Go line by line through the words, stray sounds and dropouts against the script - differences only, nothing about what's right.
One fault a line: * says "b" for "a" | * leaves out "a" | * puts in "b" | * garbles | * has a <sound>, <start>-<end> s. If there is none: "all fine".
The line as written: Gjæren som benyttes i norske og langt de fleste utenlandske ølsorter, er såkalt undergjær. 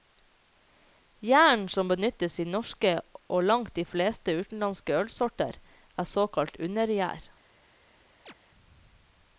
* has a chirp, 8.3-8.3 s